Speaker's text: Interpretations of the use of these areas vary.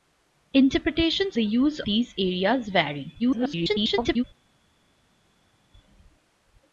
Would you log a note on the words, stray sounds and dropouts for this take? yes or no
yes